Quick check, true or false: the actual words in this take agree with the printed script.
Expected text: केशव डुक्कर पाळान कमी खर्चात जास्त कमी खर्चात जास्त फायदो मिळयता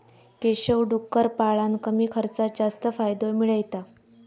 false